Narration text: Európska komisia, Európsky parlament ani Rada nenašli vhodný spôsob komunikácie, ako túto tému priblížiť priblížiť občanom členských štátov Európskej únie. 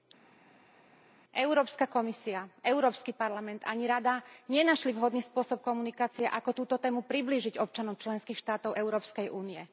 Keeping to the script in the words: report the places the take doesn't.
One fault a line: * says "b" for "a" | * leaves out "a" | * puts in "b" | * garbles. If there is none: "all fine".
* leaves out "priblížiť"